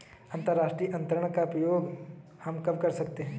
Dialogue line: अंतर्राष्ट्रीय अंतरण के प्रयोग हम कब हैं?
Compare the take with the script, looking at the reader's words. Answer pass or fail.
fail